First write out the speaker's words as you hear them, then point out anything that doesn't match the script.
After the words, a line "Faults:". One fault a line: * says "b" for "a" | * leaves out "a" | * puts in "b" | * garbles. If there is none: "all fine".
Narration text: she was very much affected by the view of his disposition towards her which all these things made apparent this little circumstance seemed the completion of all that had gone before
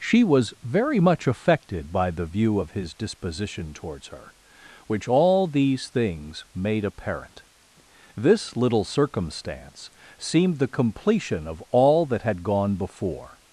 she was very much affected by the view of his disposition towards her which all these things made apparent this little circumstance seemed the completion of all that had gone before
Faults:
all fine